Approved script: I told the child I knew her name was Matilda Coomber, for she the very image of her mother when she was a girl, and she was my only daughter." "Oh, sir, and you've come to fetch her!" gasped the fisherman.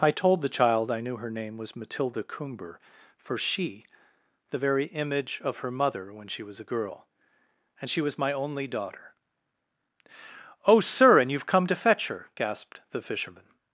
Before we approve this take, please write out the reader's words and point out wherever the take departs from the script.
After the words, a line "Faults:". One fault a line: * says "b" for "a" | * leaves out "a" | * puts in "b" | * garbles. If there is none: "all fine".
I told the child I knew her name was Matilda Coomber, for she the very image of her mother when she was a girl, and she was my only daughter." "Oh, sir, and you've come to fetch her!" gasped the fisherman.
Faults:
all fine